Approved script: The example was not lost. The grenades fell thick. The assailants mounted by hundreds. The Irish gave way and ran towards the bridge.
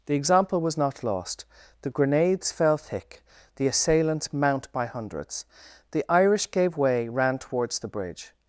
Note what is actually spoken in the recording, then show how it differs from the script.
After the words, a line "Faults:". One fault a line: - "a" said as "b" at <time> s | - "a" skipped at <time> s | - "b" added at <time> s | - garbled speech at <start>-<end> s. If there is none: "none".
The example was not lost. The grenades fell thick. The assailants mount by hundreds. The Irish gave way ran towards the bridge.
Faults:
- "mounted" said as "mount" at 4.3 s
- "and" skipped at 7.1 s